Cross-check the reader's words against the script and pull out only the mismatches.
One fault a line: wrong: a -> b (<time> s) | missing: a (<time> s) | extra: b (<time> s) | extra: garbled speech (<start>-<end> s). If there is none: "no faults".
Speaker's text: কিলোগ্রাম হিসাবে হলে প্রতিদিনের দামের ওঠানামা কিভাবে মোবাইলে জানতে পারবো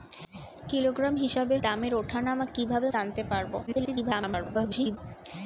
missing: হলে প্রতিদিনের (1.6 s)
missing: মোবাইলে (2.9 s)
extra: garbled speech (3.7-5.0 s)